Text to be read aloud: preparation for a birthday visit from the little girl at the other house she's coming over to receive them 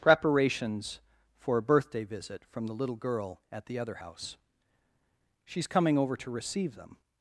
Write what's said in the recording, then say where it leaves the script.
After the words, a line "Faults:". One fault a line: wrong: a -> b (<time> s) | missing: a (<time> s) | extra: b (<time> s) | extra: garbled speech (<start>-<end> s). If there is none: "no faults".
preparations for a birthday visit from the little girl at the other house she's coming over to receive them
Faults:
wrong: preparation -> preparations (0.0 s)